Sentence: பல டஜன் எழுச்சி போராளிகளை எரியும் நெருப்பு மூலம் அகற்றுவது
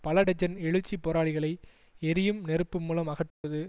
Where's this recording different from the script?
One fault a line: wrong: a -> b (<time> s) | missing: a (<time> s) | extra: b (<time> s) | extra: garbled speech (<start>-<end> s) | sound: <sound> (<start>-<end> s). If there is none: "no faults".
sound: dropout (3.3-3.4 s)